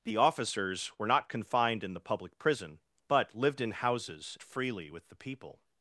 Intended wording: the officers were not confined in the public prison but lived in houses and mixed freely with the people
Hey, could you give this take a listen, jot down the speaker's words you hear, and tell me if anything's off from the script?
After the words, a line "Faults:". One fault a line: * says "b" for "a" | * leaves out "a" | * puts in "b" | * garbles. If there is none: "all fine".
the officers were not confined in the public prison but lived in houses freely with the people
Faults:
* leaves out "and mixed"